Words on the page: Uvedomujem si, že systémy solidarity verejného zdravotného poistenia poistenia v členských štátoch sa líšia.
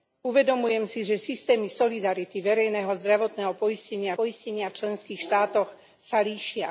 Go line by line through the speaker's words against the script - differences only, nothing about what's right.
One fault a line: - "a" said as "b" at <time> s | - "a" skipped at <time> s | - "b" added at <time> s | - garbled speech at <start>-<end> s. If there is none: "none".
none